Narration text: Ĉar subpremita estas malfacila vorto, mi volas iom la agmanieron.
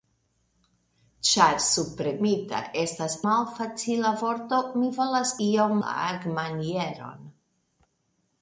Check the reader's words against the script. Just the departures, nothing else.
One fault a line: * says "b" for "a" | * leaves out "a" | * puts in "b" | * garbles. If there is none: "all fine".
all fine